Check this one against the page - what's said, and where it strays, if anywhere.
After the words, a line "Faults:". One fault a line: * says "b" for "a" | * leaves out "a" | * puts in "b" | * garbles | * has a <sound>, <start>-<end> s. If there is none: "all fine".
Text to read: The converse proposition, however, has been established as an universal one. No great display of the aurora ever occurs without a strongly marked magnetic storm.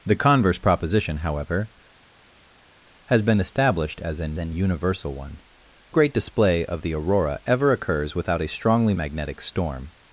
The converse proposition, however, has been established as an an universal one. Great display of the aurora ever occurs without a strongly magnetic storm.
Faults:
* puts in "an"
* leaves out "No"
* leaves out "marked"